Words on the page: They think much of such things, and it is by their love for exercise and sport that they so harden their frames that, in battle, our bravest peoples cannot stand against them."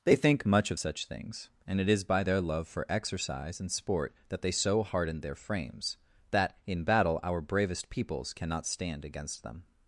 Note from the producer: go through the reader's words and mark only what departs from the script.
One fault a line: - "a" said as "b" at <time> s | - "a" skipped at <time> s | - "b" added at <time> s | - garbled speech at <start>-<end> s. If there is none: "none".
none